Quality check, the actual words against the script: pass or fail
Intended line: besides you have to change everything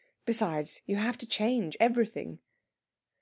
pass